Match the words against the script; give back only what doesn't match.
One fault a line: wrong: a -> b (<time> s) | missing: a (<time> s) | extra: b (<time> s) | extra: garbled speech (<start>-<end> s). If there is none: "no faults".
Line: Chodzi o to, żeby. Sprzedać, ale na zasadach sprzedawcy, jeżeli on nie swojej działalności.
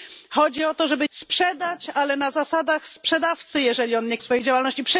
no faults